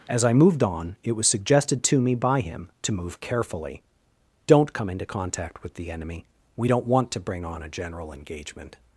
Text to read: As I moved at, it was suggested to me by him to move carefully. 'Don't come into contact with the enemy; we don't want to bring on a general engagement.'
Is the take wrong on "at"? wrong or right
wrong